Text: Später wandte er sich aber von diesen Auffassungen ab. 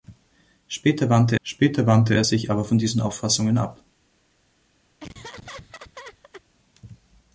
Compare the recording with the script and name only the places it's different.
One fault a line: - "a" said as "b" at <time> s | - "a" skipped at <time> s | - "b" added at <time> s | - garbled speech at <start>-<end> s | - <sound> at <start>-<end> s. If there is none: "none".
- "später wandte" added at 1.4 s
- laugh at 5.0-6.4 s